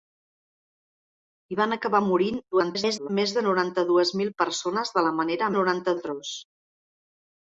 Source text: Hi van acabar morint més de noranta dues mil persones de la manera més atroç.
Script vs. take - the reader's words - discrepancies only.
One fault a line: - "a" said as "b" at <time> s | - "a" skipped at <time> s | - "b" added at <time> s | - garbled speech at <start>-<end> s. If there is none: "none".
- garbled speech at 2.5-3.1 s
- "més" said as "noranta" at 5.6 s